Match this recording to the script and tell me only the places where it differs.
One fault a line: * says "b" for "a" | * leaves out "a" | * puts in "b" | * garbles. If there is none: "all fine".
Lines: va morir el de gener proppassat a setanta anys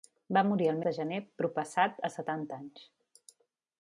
all fine